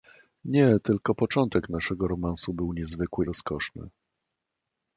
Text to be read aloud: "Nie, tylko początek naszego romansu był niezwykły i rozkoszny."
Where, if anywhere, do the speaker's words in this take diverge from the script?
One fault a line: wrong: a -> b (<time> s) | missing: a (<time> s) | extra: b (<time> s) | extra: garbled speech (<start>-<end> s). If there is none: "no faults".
missing: i (3.3 s)